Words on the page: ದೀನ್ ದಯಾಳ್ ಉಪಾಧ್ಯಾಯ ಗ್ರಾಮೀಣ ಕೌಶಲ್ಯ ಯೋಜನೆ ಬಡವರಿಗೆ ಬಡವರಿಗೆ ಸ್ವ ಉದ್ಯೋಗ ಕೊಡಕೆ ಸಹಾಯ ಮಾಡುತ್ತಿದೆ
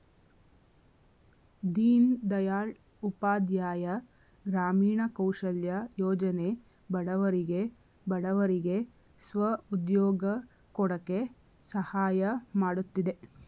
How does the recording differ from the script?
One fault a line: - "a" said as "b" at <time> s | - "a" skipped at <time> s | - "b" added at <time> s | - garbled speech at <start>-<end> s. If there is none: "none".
none